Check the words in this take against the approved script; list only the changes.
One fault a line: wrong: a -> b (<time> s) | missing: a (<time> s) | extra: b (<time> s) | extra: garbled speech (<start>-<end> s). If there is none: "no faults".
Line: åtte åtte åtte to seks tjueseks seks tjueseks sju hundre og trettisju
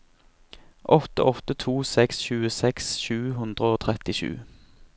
missing: åtte (1.5 s)
missing: seks tjueseks (2.9 s)